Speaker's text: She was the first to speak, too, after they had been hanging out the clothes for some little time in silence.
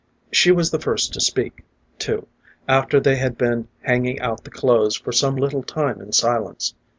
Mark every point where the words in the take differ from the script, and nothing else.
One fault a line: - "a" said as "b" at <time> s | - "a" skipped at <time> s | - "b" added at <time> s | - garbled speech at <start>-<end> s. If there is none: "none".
none